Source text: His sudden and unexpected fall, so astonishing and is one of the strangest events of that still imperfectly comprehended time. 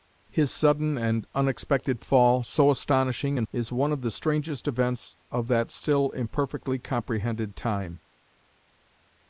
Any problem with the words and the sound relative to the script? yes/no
no